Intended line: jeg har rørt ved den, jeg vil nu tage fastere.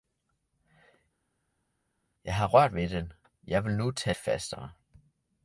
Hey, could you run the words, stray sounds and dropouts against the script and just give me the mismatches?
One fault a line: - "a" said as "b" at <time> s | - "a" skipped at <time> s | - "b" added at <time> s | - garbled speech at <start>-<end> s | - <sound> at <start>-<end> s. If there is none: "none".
none